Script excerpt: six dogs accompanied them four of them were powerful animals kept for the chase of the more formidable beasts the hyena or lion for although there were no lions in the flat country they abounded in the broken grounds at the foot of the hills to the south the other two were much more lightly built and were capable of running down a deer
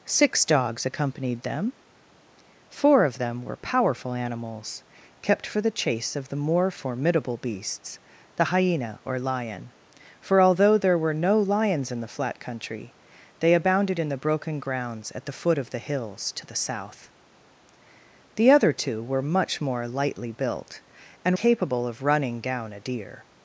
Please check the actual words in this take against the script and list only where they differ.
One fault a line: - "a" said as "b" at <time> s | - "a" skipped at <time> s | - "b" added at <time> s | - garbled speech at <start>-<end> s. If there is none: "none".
- "were" skipped at 21.3 s